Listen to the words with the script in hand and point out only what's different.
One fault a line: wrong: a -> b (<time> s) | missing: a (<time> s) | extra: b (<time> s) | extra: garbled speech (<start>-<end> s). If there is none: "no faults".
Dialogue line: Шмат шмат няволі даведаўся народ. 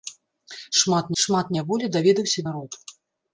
no faults